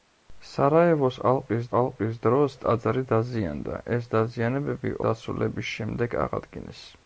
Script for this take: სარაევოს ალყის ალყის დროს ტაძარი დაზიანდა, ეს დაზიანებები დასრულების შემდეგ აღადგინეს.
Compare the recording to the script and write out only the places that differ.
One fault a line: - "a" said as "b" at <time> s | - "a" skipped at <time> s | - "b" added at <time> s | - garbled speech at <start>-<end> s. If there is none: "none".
none